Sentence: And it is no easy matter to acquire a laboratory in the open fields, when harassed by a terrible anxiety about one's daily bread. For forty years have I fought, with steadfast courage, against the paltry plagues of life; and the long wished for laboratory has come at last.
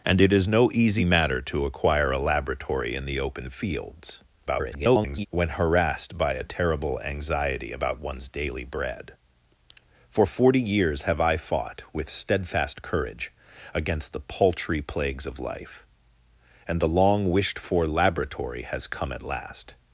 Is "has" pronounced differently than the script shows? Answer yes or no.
no